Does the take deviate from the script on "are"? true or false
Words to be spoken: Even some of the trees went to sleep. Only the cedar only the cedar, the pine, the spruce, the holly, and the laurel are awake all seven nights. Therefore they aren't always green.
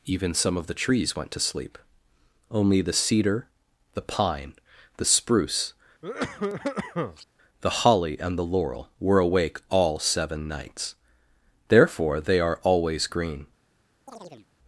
true